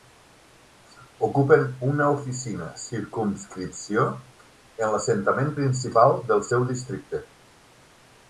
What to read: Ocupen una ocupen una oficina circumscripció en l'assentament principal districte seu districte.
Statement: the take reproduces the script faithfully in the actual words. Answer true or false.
false